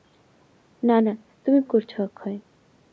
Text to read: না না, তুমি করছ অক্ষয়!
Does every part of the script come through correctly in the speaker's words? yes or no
yes